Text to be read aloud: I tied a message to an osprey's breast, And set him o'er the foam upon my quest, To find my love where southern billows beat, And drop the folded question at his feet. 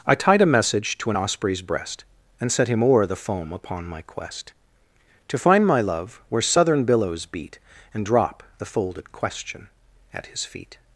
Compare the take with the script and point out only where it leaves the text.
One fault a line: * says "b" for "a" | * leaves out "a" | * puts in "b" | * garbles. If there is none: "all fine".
all fine